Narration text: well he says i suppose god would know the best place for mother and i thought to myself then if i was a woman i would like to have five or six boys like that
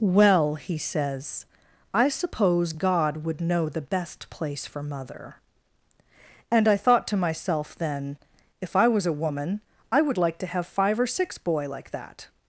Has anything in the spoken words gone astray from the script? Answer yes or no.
yes